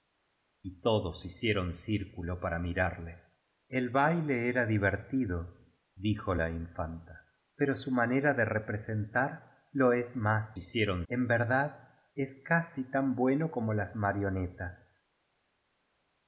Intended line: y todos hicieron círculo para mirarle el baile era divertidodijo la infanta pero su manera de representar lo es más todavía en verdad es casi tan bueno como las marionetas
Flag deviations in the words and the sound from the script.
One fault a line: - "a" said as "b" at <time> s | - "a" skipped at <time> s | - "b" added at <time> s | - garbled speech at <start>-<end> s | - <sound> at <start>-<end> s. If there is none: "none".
- "todavía" said as "hicieron" at 10.6 s